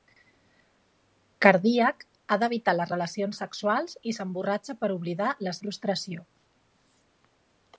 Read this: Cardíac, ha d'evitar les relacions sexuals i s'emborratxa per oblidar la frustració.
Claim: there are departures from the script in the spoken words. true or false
false